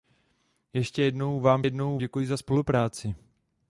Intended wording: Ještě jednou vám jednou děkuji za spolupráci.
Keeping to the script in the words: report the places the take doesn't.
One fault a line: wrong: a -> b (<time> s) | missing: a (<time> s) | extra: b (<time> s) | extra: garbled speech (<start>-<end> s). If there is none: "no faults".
no faults